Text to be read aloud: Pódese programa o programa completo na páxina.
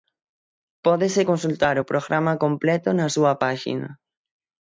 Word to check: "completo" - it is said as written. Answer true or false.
true